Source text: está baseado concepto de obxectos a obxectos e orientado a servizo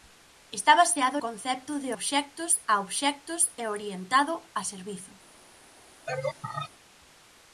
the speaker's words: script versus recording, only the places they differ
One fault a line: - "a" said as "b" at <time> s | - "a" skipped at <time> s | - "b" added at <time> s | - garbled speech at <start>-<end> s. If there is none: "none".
none